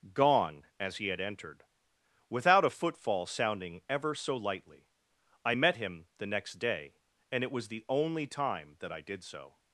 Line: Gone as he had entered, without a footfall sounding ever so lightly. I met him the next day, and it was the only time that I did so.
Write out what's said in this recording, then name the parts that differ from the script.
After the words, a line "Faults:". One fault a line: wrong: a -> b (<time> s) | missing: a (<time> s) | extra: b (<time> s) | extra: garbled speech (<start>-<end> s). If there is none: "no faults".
Gone as he had entered, without a footfall sounding ever so lightly. I met him the next day, and it was the only time that I did so.
Faults:
no faults